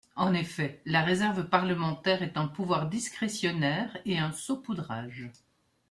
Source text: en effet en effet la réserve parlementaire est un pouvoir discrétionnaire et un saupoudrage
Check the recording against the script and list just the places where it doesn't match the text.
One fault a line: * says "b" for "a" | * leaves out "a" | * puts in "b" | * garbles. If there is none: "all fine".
* leaves out "en effet"